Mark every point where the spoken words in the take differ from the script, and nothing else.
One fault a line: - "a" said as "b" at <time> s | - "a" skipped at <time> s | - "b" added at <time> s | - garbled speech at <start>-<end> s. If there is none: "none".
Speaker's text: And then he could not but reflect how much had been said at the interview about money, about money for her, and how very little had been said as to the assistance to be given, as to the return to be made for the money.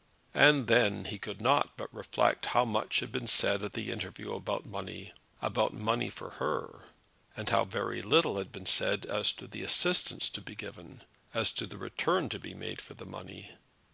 none